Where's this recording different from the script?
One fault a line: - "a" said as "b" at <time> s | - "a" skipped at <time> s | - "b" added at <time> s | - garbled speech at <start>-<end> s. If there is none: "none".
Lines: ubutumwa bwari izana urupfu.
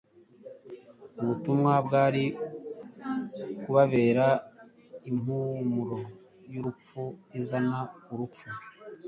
- "kubabera impumuro y'urupfu" added at 3.6 s